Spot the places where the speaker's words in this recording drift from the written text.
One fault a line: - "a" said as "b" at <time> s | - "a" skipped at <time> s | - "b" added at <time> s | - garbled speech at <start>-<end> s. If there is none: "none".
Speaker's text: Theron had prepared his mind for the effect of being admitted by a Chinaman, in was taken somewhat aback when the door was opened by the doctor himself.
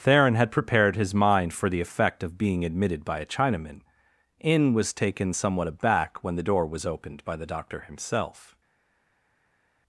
none